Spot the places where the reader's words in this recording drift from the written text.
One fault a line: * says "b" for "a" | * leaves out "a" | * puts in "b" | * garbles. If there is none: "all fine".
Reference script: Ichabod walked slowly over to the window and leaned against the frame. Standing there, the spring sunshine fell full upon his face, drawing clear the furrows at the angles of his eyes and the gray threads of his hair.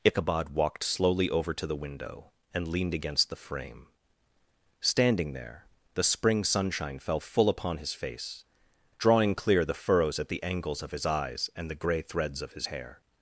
all fine